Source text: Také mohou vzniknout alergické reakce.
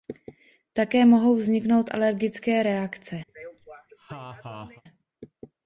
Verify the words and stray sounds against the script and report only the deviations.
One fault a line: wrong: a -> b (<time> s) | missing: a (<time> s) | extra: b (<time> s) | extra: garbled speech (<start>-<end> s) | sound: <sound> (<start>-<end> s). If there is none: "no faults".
sound: laugh (3.3-4.8 s)